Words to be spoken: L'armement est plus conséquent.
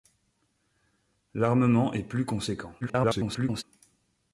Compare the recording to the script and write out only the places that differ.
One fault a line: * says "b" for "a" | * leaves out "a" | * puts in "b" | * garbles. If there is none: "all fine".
* garbles